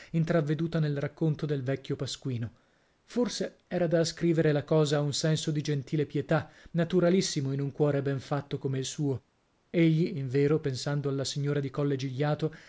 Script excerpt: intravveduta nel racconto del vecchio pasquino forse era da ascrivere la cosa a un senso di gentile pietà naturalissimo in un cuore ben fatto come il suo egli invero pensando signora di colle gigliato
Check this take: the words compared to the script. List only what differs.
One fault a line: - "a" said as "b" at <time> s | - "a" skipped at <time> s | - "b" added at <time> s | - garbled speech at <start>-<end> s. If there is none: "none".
- "alla" added at 11.1 s